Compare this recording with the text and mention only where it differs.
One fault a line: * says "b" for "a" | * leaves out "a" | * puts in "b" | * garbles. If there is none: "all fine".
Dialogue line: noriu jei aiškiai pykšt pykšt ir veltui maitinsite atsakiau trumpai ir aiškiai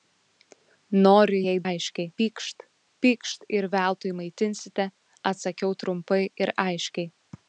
all fine